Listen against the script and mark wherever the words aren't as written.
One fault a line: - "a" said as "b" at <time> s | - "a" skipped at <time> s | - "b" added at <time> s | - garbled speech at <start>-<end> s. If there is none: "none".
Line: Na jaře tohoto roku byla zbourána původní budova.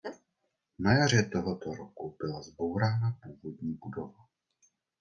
none